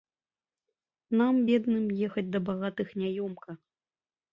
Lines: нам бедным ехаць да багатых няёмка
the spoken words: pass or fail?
pass